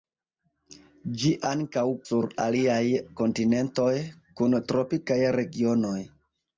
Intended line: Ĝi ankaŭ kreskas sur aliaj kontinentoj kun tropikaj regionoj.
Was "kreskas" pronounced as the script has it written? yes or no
no